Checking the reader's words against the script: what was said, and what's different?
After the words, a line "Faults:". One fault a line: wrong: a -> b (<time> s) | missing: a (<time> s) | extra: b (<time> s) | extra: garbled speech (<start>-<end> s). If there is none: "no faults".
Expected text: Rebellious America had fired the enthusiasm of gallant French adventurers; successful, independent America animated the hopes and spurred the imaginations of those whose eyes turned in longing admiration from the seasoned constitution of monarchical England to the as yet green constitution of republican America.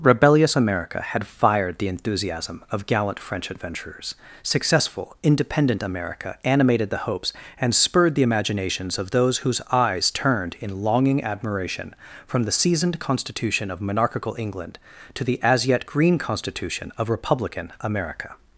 Rebellious America had fired the enthusiasm of gallant French adventurers; successful, independent America animated the hopes and spurred the imaginations of those whose eyes turned in longing admiration from the seasoned constitution of monarchical England to the as yet green constitution of republican America.
Faults:
no faults